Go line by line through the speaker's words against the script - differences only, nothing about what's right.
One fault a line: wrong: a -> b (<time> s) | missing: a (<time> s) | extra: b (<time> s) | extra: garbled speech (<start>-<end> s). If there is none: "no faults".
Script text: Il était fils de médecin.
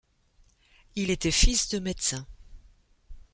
no faults